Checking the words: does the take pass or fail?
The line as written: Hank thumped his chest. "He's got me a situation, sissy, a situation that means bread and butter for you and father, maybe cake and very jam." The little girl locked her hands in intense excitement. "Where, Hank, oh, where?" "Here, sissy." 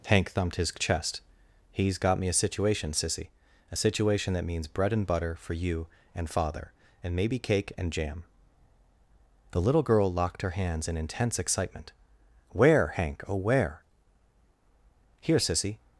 fail